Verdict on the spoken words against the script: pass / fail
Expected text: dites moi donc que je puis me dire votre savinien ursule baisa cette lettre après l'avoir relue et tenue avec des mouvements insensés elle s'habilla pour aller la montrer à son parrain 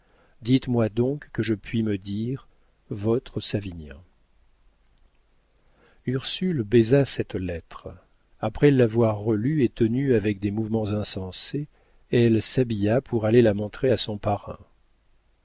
pass